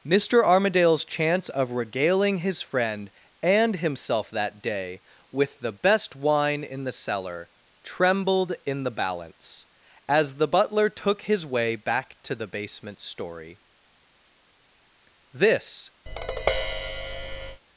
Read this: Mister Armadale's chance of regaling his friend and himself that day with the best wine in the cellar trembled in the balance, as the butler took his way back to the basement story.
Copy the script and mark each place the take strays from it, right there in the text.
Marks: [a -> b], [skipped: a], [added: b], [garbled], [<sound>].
Mister Armadale's chance of regaling his friend and himself that day with the best wine in the cellar trembled in the balance, as the butler took his way back to the basement story. [added: This] [tap]